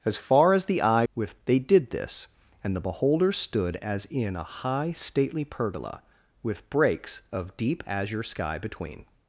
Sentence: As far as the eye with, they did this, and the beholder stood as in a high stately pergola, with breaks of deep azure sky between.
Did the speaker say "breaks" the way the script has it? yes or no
yes